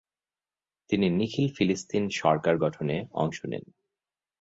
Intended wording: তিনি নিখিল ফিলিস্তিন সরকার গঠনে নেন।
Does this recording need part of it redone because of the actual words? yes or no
yes